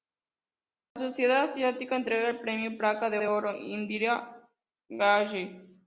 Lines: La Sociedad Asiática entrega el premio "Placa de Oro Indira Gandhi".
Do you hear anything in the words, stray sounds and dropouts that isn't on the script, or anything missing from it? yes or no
yes